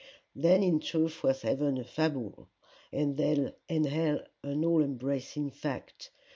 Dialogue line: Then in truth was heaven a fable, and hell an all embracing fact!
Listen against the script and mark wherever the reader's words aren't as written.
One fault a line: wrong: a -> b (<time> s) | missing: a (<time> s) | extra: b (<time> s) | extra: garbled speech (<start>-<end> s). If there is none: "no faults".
no faults